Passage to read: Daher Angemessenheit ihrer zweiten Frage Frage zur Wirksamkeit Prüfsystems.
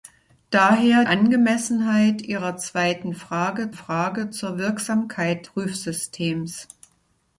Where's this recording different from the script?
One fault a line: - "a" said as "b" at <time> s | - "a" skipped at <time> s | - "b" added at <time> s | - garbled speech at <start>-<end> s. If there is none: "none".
none